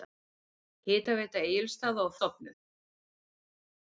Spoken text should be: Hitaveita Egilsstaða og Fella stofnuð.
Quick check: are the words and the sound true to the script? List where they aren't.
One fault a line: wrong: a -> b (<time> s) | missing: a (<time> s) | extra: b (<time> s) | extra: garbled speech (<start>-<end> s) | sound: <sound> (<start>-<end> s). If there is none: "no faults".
missing: Fella (2.2 s)